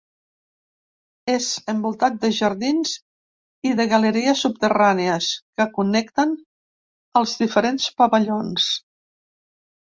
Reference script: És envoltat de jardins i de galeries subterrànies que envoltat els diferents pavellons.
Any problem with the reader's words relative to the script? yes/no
yes